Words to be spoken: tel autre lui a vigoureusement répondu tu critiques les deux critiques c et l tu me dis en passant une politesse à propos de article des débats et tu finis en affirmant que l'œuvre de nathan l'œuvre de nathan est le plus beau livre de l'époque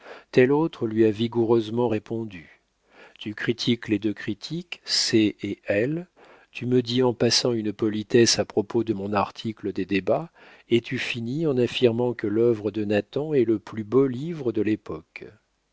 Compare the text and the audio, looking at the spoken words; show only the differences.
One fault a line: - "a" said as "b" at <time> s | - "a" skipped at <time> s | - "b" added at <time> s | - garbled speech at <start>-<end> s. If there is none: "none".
- "mon" added at 8.9 s
- "l'œuvre de nathan" skipped at 13.3 s